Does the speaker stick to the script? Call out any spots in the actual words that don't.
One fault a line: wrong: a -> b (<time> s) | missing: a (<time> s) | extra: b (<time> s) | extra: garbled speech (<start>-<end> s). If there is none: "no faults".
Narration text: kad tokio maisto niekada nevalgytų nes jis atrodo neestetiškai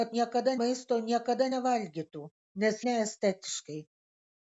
wrong: tokio -> niekada (0.1 s)
missing: jis atrodo (2.8 s)